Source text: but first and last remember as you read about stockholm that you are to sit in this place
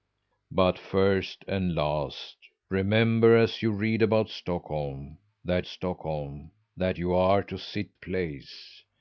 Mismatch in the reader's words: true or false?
true